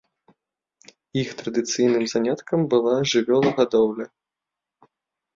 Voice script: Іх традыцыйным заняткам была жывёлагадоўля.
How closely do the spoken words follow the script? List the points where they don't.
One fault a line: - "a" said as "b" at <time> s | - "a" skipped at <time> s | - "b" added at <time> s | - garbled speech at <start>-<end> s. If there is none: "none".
none